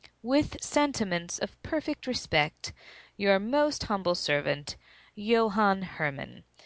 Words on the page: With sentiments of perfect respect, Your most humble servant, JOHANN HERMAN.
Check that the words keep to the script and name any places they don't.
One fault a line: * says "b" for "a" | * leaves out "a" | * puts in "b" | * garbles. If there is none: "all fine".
all fine